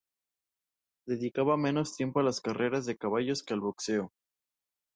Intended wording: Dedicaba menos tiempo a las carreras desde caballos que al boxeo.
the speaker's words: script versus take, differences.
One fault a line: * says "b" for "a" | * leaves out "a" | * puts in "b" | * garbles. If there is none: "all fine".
* says "de" for "desde"